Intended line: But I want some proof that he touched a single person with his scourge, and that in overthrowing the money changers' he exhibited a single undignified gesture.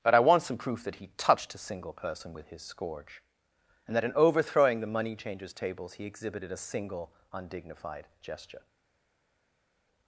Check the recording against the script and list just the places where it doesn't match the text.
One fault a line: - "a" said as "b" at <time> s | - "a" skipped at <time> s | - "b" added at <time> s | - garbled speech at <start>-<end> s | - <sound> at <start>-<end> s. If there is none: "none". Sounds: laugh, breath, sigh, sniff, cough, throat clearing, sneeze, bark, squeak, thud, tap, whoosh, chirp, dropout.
- "tables" added at 5.5 s